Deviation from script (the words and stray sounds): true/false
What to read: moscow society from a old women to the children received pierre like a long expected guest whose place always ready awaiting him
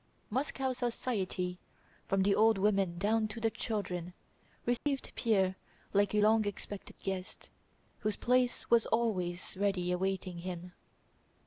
true